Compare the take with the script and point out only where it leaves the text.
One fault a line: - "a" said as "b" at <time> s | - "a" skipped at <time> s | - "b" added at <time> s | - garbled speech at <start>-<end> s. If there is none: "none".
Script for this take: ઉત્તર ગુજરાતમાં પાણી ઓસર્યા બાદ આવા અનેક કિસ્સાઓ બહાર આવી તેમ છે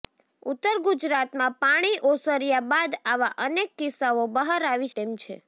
none